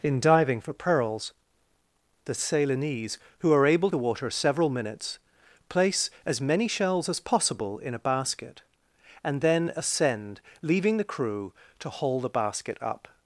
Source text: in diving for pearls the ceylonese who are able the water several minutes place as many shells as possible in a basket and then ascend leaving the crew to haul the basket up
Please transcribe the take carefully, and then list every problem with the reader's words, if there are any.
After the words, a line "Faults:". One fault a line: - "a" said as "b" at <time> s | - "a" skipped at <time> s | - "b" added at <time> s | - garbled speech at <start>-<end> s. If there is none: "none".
in diving for pearls the ceylonese who are able the water several minutes place as many shells as possible in a basket and then ascend leaving the crew to haul the basket up
Faults:
none